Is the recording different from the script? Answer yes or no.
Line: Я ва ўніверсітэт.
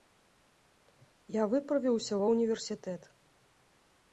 yes